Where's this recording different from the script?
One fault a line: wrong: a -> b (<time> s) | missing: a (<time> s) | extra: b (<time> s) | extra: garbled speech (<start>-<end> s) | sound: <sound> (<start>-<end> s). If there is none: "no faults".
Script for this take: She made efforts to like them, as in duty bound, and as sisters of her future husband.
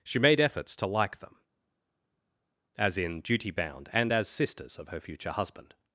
no faults